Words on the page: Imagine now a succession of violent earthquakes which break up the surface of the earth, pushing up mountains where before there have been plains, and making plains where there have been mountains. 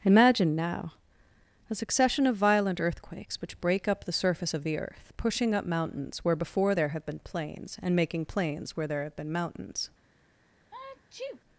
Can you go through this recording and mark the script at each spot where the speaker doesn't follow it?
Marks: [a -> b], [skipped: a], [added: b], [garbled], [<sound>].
Imagine now a succession of violent earthquakes which break up the surface of the earth, pushing up mountains where before there have been plains, and making plains where there have been mountains. [sneeze]